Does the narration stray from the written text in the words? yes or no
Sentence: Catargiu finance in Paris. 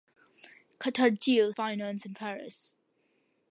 no